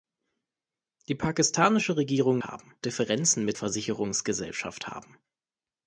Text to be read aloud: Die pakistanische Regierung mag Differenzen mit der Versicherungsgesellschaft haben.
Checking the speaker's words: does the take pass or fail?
fail